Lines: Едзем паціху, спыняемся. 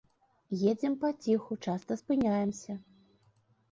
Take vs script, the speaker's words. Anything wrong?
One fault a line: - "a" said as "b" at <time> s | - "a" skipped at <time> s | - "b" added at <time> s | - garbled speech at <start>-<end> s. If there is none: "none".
- "часта" added at 1.7 s